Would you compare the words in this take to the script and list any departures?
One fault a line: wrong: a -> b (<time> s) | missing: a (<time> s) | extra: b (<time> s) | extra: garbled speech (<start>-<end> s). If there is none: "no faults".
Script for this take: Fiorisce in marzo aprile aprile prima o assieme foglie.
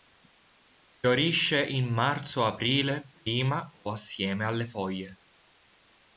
missing: aprile (3.1 s)
extra: alle (4.5 s)